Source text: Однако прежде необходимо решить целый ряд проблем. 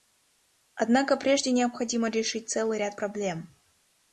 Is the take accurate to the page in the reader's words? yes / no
yes